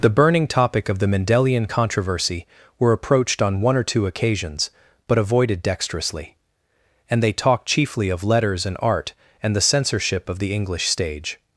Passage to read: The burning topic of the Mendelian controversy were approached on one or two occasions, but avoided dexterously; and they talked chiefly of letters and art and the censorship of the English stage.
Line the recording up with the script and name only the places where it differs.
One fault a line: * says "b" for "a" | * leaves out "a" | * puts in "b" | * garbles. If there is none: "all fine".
all fine